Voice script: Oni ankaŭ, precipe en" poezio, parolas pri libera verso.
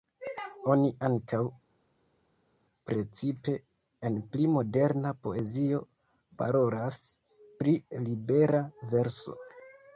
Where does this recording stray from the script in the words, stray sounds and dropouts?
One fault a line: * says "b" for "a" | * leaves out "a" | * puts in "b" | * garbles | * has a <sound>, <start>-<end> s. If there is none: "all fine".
* puts in "pli moderna"